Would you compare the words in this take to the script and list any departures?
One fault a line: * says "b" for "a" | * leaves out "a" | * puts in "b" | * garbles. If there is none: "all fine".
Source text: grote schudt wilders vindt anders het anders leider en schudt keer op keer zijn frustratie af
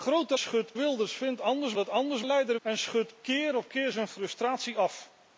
all fine